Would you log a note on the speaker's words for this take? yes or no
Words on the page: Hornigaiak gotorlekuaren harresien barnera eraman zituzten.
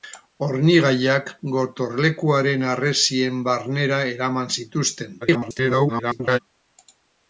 yes